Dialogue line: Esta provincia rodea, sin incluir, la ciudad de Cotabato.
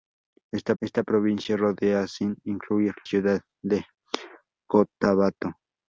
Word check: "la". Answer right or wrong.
wrong